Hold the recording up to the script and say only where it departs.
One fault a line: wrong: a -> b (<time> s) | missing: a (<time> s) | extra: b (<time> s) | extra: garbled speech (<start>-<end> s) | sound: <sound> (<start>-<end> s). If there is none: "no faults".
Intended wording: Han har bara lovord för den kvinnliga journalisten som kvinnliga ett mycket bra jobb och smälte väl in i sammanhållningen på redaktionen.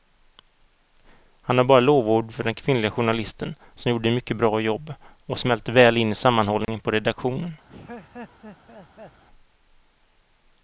wrong: kvinnliga -> gjorde (3.9 s)
sound: dropout (6.6-6.7 s)
sound: laugh (7.7-9.2 s)